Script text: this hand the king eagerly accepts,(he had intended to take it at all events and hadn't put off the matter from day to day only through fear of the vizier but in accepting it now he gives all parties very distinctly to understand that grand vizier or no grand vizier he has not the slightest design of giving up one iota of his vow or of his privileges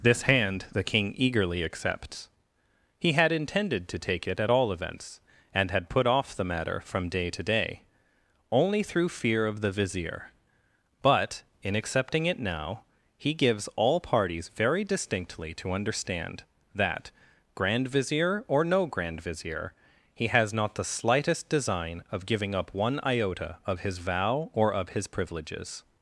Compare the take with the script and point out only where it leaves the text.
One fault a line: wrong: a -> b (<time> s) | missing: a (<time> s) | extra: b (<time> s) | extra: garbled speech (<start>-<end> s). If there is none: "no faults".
wrong: hadn't -> had (5.7 s)